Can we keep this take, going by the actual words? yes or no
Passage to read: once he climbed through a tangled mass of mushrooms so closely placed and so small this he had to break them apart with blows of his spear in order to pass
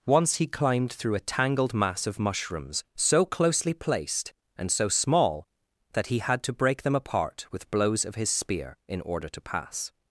no